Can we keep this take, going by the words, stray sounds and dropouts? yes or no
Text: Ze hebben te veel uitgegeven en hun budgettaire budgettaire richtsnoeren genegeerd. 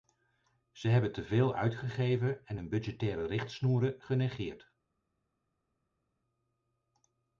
no